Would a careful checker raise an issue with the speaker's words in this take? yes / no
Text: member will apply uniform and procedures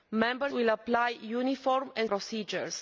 no